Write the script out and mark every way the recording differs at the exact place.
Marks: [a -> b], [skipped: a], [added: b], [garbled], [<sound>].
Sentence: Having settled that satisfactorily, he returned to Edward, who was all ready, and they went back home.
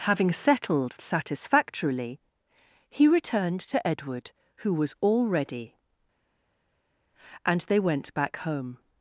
Having settled [skipped: that] satisfactorily, he returned to Edward, who was all ready, and they went back home.